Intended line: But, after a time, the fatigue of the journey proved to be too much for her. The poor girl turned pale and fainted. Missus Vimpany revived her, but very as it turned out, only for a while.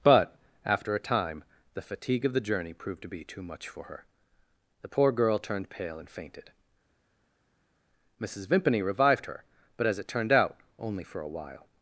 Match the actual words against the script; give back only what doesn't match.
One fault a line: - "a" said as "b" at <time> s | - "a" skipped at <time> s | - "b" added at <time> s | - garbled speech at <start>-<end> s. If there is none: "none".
- "very" skipped at 9.9 s